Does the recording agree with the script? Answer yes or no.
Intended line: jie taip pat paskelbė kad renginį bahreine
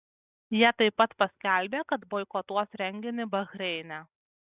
no